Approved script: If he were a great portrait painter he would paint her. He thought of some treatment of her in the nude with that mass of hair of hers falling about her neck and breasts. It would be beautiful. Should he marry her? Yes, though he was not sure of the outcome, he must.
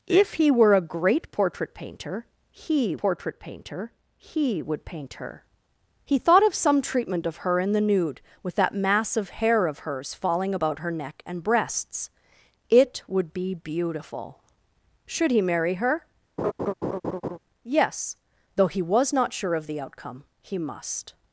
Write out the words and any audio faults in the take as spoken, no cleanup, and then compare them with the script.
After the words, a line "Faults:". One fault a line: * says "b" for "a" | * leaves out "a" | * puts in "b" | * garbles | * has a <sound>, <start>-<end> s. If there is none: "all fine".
If he were a great portrait painter he portrait painter he would paint her. He thought of some treatment of her in the nude with that mass of hair of hers falling about her neck and breasts. It would be beautiful. Should he marry her? Yes, though he was not sure of the outcome, he must.
Faults:
* puts in "portrait painter he"
* has a laugh, 16.4-17.4 s